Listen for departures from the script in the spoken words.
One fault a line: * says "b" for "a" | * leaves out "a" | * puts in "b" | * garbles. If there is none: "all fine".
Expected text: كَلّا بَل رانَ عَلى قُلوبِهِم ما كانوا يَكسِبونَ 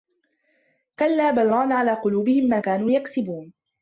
all fine